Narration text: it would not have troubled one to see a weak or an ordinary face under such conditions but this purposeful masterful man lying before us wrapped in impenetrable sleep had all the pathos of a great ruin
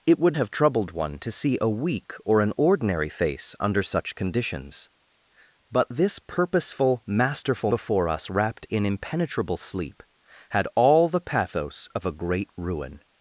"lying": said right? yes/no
no